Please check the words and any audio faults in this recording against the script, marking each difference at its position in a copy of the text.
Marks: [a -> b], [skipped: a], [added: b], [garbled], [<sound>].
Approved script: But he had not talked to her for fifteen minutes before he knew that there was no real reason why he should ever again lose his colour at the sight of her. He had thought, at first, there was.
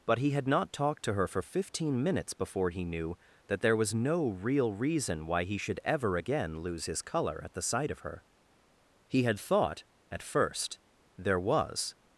But he had not talked to her for fifteen minutes before he knew that there was no real reason why he should ever again lose his colour at the sight of her. He had thought, at first, there was.